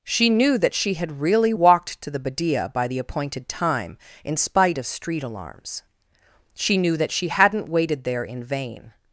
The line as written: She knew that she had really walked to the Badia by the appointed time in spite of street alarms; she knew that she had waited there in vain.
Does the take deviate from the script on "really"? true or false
false